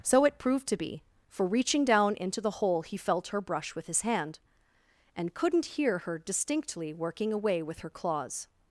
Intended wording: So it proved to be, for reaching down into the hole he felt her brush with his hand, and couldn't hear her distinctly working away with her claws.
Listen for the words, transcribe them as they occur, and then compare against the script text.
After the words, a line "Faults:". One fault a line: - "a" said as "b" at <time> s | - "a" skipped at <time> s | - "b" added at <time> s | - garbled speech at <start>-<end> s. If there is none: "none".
So it proved to be, for reaching down into the hole he felt her brush with his hand, and couldn't hear her distinctly working away with her claws.
Faults:
none